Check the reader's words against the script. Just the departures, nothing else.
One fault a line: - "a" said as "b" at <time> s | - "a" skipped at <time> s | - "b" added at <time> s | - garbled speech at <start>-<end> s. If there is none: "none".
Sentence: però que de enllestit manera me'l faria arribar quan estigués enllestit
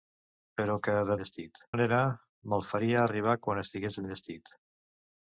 none